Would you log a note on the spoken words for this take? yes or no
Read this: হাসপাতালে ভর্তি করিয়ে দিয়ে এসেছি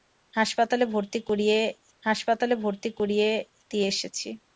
yes